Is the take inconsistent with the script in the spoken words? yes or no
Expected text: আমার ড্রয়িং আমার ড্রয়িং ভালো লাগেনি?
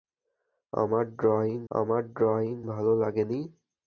no